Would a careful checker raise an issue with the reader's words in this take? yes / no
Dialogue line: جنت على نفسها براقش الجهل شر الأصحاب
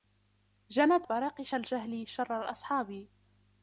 yes